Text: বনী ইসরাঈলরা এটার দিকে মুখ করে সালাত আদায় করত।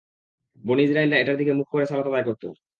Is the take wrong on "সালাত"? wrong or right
right